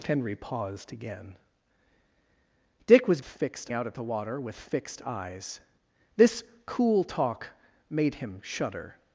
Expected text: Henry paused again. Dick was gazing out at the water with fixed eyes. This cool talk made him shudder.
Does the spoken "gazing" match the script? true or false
false